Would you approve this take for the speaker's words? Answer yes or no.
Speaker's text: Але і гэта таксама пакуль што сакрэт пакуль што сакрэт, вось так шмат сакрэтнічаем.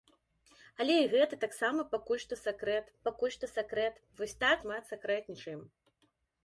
yes